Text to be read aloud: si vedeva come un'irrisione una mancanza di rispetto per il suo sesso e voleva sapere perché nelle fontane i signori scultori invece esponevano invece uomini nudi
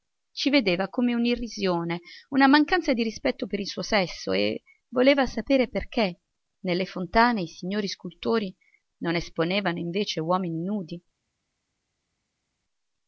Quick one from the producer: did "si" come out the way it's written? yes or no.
no